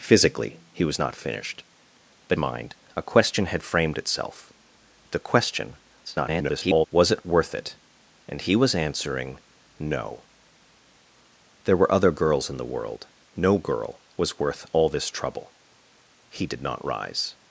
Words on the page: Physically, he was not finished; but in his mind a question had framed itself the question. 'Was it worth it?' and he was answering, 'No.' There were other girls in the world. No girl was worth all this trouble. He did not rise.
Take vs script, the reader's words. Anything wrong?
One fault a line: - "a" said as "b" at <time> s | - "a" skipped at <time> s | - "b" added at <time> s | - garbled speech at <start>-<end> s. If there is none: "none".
- "in his" skipped at 2.4 s
- garbled speech at 6.0-6.9 s